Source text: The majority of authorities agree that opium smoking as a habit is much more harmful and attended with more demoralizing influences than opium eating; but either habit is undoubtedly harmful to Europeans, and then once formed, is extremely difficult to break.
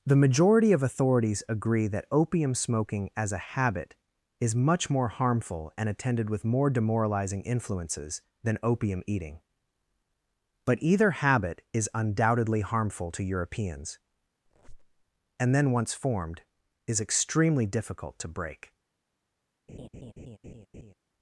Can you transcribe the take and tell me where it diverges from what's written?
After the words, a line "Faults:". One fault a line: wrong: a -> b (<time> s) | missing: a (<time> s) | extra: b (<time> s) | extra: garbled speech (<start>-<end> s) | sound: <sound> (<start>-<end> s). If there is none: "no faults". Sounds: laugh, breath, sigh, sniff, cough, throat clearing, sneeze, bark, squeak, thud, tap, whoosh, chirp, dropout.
The majority of authorities agree that opium smoking as a habit is much more harmful and attended with more demoralizing influences than opium eating; but either habit is undoubtedly harmful to Europeans, and then once formed, is extremely difficult to break.
Faults:
sound: squeak (14.4-15.0 s)
sound: laugh (19.7-20.9 s)